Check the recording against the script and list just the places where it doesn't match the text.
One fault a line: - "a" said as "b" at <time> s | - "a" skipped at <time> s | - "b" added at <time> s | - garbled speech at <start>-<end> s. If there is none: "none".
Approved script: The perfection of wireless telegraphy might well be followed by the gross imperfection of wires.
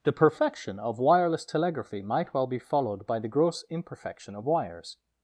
none